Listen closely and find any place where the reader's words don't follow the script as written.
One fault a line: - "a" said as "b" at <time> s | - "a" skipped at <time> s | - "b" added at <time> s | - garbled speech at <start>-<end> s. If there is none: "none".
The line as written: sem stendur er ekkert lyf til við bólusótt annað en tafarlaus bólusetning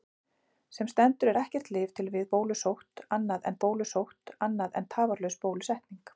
- "bólusótt annað en" added at 3.7 s